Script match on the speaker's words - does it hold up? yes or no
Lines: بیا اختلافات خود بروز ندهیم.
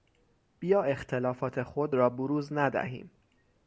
no